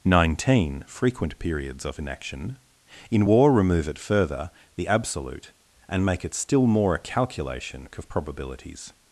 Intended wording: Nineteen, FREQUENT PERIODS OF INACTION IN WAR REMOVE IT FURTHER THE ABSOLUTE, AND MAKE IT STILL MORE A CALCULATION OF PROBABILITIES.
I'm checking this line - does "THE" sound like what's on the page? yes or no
yes